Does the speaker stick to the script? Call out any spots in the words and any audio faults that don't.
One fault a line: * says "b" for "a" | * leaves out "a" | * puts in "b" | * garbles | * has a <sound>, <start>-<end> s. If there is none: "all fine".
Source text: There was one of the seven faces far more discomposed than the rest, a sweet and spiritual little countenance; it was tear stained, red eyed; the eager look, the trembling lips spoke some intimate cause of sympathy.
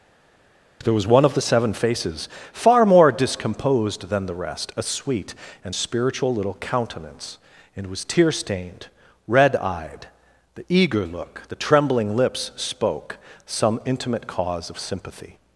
* says "and" for "it"